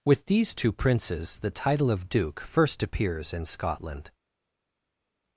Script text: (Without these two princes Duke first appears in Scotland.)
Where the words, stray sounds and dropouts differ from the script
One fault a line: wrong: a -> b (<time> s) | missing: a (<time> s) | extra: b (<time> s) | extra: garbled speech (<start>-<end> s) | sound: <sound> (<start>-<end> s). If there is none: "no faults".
wrong: Without -> With (0.0 s)
extra: the title of (1.4 s)